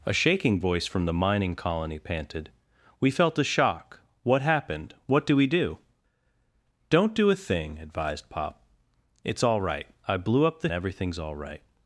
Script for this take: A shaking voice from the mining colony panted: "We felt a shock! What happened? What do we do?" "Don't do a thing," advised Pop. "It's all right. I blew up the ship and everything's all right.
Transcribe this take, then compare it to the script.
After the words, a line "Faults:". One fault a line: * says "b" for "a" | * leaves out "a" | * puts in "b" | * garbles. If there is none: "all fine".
A shaking voice from the mining colony panted: "We felt a shock! What happened? What do we do?" "Don't do a thing," advised Pop. "It's all right. I blew up the everything's all right.
Faults:
* leaves out "ship and"